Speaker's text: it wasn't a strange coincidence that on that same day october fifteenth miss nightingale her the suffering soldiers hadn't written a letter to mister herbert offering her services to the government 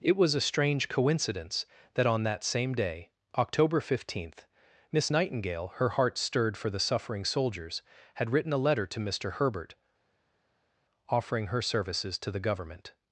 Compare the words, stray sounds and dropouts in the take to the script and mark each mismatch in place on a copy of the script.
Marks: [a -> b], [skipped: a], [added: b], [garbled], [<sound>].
it [wasn't -> was] a strange coincidence that on that same day october fifteenth miss nightingale her [added: heart stirred for] the suffering soldiers [hadn't -> had] written a letter to mister herbert offering her services to the government